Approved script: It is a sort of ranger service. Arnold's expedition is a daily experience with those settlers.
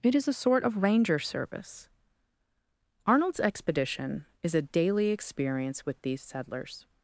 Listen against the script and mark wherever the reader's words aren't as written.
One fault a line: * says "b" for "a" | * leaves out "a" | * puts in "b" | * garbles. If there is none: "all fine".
* says "these" for "those"